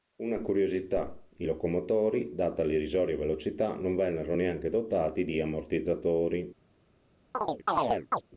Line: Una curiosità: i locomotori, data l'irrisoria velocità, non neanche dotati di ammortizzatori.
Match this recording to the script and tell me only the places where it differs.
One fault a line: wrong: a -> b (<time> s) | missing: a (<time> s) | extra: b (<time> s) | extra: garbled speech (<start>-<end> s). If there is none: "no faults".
extra: vennero (4.0 s)